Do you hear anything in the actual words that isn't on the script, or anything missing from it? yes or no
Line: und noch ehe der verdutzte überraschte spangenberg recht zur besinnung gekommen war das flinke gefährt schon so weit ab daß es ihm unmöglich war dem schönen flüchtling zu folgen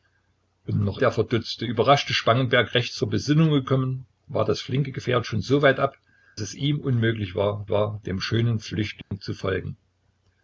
yes